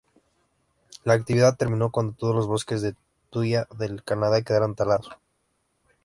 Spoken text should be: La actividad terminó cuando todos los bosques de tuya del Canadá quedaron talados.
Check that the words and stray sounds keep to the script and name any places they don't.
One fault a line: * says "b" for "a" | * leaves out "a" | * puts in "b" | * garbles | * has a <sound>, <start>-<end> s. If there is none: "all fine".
all fine